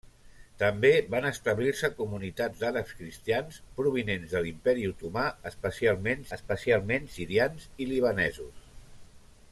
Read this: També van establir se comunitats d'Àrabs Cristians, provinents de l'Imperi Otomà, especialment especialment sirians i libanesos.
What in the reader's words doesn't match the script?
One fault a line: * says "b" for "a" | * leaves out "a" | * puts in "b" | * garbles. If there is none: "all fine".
all fine